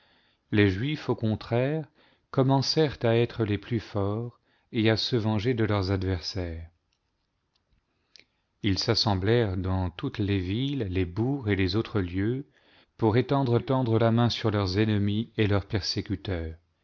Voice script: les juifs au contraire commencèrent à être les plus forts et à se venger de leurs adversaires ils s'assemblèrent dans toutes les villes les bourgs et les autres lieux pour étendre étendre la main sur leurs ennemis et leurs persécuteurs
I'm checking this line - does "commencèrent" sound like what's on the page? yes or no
yes